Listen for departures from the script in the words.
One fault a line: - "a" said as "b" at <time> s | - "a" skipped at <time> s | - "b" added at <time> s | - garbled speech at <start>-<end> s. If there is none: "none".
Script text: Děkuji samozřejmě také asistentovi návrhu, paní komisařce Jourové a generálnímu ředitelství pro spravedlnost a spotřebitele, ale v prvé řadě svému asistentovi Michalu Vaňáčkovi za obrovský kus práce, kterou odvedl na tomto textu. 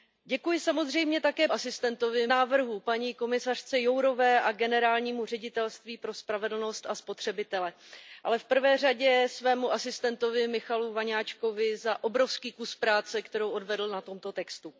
none